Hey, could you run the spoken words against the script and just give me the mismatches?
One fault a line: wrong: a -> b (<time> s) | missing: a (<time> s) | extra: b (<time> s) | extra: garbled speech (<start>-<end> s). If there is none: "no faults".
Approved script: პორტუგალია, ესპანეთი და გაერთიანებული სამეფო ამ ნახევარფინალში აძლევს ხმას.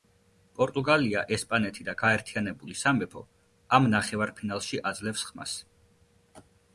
no faults